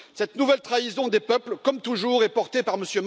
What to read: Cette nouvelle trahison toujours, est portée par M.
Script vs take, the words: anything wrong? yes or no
yes